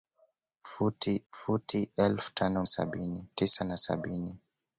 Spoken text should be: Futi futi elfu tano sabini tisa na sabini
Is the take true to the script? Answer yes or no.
yes